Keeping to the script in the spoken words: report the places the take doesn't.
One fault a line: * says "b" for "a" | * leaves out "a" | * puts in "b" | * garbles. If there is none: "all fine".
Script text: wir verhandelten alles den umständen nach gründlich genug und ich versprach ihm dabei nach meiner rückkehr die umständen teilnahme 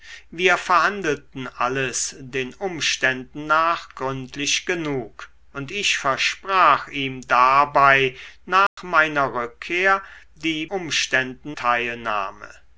all fine